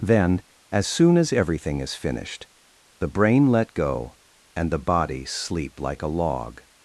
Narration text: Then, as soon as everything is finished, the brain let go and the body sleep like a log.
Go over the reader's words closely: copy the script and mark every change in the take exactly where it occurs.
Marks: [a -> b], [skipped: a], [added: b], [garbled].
Then, as soon as everything is finished, the brain let go and the body sleep like a log.